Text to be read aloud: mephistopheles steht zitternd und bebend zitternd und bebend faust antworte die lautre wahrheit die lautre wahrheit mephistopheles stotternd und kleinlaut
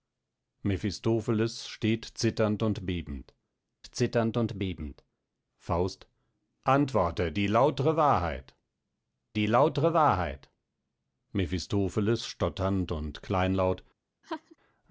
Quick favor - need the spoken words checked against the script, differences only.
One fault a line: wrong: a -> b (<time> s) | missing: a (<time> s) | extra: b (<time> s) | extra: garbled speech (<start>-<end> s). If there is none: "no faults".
no faults